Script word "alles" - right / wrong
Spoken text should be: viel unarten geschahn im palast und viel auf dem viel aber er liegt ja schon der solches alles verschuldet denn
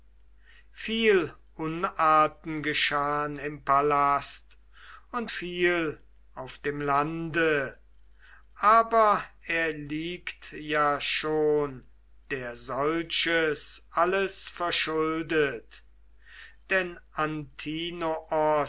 right